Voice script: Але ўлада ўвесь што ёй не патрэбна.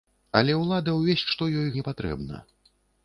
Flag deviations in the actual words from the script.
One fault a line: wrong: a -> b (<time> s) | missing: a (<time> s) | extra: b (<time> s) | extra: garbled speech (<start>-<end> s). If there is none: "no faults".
no faults